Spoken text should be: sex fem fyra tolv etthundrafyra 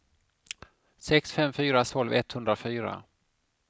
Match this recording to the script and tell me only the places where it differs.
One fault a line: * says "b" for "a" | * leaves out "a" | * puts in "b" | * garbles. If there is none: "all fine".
all fine